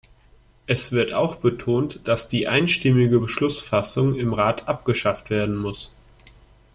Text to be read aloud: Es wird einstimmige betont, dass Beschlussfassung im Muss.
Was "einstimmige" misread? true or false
true